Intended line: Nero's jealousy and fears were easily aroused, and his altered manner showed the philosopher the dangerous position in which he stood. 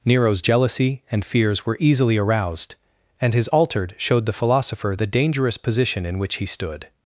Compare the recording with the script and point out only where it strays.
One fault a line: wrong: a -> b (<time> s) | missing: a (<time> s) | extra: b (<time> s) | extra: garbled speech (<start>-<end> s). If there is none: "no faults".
missing: manner (3.9 s)